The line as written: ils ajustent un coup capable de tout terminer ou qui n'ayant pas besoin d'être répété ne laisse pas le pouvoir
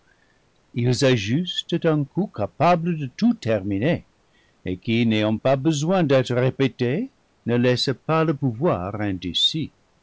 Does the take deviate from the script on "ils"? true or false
false